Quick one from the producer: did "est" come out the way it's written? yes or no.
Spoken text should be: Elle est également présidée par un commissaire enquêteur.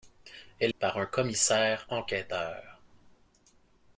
no